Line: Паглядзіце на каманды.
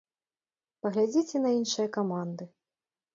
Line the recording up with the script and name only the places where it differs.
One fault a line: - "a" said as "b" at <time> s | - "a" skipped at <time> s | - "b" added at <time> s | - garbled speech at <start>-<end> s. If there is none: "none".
- "іншыя" added at 1.6 s